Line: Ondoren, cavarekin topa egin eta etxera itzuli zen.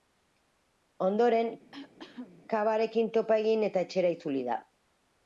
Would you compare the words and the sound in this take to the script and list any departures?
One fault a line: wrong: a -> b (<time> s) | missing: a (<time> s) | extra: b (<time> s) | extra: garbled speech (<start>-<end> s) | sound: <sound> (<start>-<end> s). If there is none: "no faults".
sound: cough (1.7-2.4 s)
wrong: zen -> da (4.5 s)